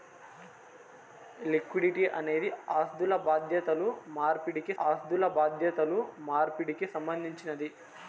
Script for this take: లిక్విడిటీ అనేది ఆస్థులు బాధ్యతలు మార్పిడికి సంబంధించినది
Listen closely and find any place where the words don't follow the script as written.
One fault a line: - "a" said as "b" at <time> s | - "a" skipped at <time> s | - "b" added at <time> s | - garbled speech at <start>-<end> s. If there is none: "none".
- "ఆస్థులు బాధ్యతలు మార్పిడికి" added at 4.8 s